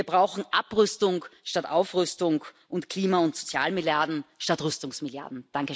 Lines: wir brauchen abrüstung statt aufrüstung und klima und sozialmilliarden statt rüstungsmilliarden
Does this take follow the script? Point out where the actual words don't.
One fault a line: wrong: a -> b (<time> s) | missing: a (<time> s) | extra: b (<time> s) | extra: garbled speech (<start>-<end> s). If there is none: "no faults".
no faults